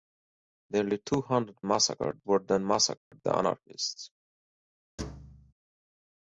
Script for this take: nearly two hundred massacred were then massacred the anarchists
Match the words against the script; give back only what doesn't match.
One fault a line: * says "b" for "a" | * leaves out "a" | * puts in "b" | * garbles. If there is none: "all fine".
all fine